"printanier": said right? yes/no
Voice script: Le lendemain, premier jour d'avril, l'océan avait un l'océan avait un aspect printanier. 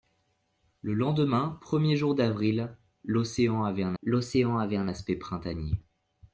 yes